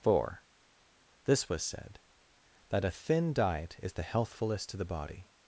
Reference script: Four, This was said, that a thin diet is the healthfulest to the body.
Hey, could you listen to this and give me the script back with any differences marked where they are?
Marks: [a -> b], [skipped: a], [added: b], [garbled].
Four, This was said, that a thin diet is the healthfulest to the body.